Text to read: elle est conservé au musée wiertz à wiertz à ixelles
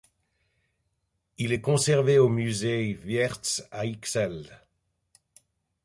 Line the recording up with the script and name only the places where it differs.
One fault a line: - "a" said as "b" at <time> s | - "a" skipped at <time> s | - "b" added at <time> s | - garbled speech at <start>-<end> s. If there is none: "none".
- "elle" said as "il" at 1.4 s
- "wiertz à" skipped at 3.8 s